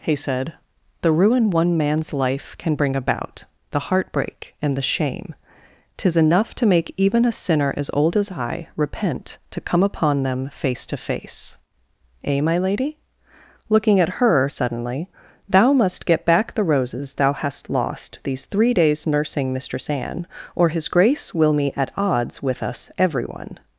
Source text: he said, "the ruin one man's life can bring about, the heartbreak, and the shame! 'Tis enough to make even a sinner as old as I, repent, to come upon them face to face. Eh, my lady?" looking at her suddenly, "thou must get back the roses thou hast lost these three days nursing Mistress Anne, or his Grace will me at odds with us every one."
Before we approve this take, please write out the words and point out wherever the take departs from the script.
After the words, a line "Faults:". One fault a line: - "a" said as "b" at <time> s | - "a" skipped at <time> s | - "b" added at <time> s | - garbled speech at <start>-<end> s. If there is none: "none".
he said, "the ruin one man's life can bring about, the heartbreak, and the shame! 'Tis enough to make even a sinner as old as I, repent, to come upon them face to face. Eh, my lady?" looking at her suddenly, "thou must get back the roses thou hast lost these three days nursing Mistress Anne, or his Grace will me at odds with us every one."
Faults:
none